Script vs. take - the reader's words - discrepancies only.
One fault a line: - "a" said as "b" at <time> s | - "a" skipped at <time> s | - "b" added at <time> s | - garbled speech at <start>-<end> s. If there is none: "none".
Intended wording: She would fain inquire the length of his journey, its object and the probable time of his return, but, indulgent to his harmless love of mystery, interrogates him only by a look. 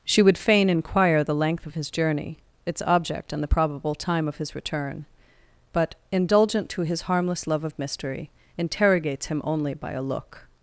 none